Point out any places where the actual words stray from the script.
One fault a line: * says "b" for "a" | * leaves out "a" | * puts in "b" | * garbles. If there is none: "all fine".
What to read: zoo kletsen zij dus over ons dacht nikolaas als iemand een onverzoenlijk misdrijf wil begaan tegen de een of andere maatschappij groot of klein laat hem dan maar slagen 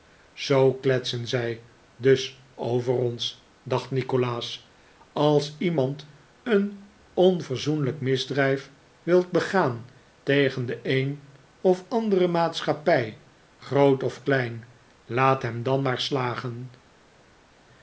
all fine